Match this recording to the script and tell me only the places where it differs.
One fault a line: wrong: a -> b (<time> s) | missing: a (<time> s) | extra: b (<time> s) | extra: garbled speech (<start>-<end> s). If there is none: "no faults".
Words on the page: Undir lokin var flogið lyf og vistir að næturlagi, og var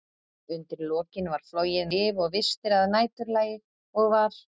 no faults